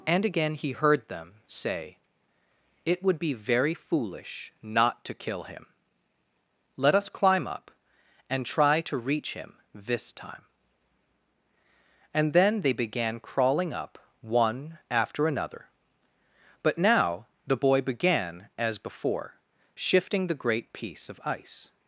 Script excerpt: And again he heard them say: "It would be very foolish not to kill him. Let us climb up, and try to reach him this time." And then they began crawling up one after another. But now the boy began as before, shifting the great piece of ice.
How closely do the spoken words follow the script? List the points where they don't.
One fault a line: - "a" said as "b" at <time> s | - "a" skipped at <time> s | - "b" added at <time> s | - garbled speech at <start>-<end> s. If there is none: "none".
none